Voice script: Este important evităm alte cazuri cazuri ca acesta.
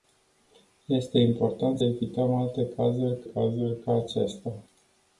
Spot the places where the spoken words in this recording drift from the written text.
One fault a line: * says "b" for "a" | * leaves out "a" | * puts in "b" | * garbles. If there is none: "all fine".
all fine